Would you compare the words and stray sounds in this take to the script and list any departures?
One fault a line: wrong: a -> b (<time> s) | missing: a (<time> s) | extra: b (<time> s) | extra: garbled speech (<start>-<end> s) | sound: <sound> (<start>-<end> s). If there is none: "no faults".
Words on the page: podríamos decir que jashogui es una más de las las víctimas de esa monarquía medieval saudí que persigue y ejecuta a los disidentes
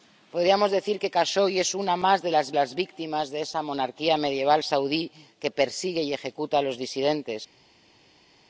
no faults